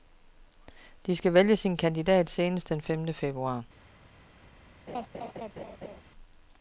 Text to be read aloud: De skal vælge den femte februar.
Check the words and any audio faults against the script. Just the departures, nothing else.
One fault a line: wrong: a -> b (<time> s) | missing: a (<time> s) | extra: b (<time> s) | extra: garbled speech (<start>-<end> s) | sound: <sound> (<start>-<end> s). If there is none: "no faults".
extra: sin kandidat senest (1.6 s)
sound: laugh (4.9-6.0 s)